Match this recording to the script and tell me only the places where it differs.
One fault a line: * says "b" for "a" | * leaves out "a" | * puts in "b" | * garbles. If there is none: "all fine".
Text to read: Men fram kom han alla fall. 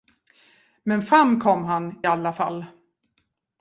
all fine